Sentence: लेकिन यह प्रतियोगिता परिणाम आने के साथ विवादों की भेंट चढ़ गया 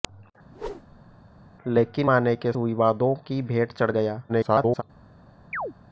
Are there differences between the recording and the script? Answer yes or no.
yes